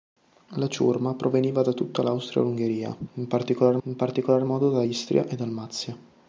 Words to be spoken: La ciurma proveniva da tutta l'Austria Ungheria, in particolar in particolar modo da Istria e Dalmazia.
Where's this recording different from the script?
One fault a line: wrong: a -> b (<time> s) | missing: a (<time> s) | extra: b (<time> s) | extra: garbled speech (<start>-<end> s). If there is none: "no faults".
no faults